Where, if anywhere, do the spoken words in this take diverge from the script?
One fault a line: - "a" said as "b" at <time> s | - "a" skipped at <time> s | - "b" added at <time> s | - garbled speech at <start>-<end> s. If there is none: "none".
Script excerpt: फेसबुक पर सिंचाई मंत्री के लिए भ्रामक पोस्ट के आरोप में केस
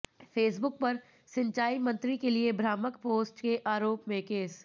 none